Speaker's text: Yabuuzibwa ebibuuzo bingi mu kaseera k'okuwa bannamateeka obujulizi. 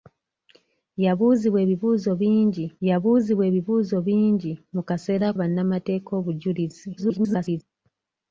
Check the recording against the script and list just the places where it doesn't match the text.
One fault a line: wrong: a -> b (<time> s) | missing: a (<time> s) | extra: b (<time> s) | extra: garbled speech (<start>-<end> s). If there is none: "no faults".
extra: yabuuzibwa ebibuuzo bingi (2.9 s)
missing: k'okuwa (5.3 s)
extra: garbled speech (7.0-7.6 s)